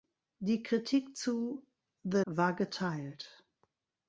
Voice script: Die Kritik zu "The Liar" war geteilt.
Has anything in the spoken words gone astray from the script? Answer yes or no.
yes